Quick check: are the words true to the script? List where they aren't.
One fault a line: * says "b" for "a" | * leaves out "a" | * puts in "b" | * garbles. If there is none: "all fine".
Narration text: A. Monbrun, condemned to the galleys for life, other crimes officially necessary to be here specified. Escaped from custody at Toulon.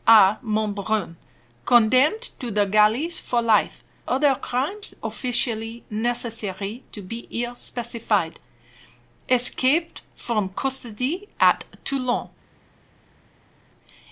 all fine